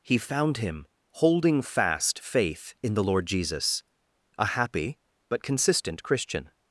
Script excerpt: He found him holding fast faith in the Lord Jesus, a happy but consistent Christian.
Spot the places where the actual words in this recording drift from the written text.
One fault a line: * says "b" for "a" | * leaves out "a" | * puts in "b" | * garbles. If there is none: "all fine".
all fine